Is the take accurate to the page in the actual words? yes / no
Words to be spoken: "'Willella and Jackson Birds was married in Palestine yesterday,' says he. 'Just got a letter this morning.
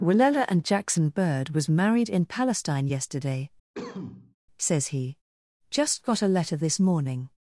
no